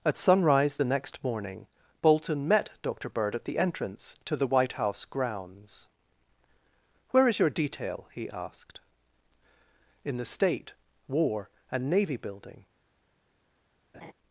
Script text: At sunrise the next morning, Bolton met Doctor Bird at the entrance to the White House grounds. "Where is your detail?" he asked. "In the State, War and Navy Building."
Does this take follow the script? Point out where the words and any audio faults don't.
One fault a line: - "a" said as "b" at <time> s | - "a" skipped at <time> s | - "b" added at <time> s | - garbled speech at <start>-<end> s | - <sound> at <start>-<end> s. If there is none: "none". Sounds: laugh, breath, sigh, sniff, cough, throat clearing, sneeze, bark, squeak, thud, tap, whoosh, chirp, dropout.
- laugh at 13.9-14.1 s